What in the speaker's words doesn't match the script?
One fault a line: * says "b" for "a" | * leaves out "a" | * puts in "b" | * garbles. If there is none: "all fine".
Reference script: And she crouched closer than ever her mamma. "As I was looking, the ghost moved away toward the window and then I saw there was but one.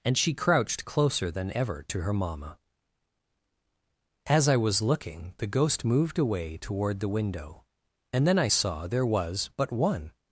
* puts in "to"